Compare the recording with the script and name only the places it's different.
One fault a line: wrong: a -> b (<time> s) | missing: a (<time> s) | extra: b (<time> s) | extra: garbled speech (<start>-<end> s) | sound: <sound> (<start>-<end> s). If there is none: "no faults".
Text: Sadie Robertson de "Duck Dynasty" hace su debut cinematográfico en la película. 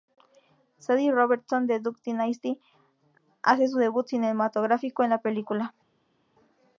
no faults